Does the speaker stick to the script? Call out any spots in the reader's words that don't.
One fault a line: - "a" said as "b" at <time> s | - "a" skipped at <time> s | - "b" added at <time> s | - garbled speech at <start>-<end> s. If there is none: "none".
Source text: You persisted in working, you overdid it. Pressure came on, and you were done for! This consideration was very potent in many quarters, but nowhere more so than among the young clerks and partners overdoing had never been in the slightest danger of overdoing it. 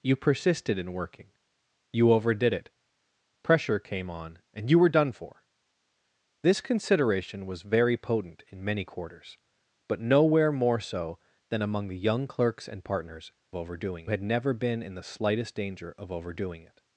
none